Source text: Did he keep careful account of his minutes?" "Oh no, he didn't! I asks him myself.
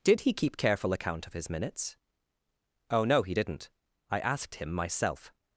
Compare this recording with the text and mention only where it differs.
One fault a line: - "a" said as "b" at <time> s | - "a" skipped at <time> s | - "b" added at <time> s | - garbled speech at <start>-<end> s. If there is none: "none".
- "asks" said as "asked" at 4.2 s